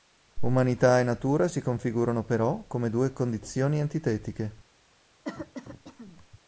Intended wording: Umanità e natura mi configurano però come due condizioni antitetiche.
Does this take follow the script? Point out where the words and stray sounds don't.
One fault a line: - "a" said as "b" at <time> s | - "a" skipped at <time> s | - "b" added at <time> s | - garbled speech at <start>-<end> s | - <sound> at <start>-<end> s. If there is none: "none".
- "mi" said as "si" at 1.5 s
- cough at 5.2-6.4 s